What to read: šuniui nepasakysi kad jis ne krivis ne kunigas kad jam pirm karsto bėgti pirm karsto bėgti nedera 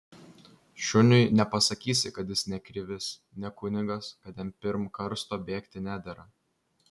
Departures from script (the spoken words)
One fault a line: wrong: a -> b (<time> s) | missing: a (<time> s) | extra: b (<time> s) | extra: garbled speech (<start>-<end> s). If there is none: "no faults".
missing: pirm karsto bėgti (5.8 s)